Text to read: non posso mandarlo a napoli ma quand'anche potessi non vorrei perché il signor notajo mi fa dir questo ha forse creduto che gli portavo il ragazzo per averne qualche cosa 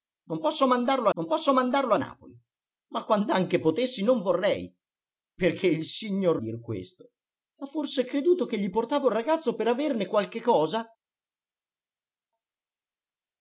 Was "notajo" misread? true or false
true